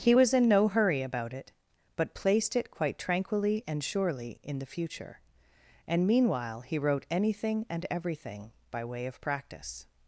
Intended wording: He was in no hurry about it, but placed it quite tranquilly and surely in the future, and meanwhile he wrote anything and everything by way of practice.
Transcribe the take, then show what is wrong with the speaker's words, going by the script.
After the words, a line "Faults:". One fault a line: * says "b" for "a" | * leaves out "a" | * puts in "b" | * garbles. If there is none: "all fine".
He was in no hurry about it, but placed it quite tranquilly and surely in the future, and meanwhile he wrote anything and everything by way of practice.
Faults:
all fine